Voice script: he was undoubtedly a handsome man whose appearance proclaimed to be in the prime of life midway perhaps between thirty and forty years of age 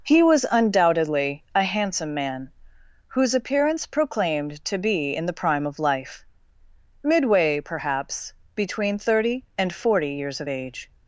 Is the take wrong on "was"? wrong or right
right